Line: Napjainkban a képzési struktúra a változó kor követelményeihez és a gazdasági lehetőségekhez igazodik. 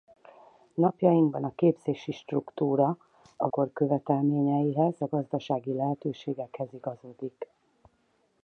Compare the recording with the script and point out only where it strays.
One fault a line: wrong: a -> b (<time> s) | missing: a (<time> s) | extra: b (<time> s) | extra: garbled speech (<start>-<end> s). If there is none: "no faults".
missing: változó (3.5 s)
missing: és (4.9 s)